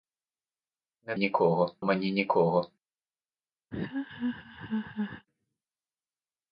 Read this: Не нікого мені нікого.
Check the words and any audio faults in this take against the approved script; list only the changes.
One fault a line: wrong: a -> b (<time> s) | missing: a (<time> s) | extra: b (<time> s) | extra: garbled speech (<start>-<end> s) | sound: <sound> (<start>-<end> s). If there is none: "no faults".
sound: laugh (3.7-5.3 s)